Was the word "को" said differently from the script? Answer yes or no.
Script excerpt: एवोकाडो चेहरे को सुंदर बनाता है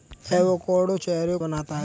yes